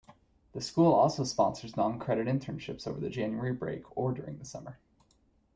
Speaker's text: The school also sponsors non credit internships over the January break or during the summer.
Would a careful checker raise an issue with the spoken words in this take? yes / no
no